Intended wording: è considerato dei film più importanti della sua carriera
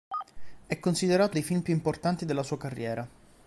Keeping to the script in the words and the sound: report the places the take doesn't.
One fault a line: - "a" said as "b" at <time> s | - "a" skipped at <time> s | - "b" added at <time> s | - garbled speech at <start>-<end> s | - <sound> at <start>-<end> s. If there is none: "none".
none